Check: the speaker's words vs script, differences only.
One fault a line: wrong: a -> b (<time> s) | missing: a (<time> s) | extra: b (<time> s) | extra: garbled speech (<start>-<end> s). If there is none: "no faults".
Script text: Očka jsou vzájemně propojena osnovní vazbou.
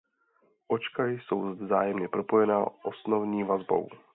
no faults